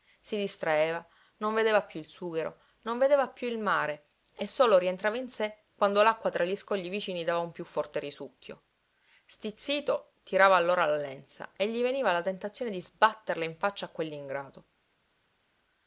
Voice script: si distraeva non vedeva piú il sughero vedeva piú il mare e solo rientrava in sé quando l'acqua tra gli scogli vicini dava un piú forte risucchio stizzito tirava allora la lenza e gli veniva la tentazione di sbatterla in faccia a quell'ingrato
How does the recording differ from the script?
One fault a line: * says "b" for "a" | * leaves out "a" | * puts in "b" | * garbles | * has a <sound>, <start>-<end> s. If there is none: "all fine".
* puts in "non"